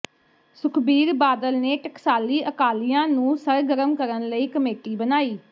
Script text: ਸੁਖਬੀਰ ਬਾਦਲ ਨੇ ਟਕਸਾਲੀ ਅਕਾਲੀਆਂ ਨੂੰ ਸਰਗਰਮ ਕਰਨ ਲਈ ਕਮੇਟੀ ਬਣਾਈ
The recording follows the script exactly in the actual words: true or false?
true